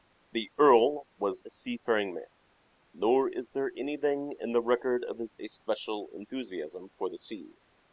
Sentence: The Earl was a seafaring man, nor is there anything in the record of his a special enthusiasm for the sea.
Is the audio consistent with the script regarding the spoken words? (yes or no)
yes